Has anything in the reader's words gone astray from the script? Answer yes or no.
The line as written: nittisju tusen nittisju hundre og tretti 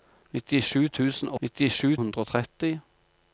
no